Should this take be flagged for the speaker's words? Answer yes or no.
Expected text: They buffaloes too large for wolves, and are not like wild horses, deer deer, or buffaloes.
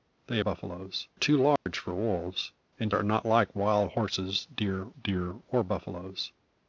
no